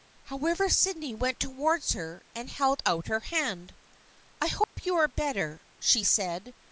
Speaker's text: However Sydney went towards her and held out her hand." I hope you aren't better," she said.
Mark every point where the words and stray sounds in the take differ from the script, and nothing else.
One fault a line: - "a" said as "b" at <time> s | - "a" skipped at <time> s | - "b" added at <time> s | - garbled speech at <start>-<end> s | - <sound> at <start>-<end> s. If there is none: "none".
- dropout at 4.6-4.8 s
- "aren't" said as "are" at 4.9 s